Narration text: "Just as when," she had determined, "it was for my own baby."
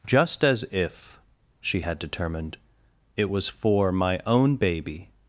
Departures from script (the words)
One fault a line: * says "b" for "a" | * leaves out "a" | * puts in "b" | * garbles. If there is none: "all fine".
* says "if" for "when"